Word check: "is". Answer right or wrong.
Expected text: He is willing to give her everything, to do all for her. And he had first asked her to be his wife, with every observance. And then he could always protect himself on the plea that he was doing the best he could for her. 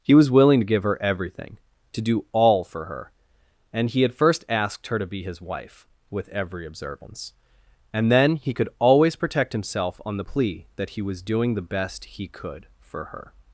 wrong